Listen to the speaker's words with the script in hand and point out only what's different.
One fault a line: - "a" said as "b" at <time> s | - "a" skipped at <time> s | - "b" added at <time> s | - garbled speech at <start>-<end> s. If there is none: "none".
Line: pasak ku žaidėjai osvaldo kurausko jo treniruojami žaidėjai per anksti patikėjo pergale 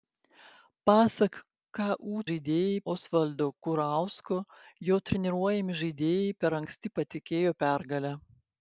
none